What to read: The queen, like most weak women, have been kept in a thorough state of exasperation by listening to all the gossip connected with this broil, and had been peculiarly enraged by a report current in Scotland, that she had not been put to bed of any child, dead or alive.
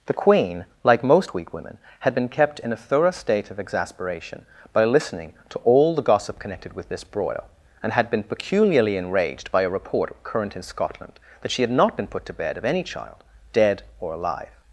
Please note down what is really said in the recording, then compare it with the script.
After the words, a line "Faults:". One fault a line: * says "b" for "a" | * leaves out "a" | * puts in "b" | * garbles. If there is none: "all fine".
The queen, like most weak women, had been kept in a thorough state of exasperation by listening to all the gossip connected with this broil, and had been peculiarly enraged by a report current in Scotland, that she had not been put to bed of any child, dead or alive.
Faults:
* says "had" for "have"